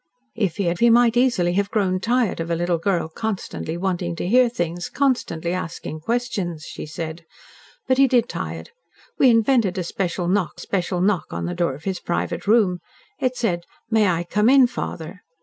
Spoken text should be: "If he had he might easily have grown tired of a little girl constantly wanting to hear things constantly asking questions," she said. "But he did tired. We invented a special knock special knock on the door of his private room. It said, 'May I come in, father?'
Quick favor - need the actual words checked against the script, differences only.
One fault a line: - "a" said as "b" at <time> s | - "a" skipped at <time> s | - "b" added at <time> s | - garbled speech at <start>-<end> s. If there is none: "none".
none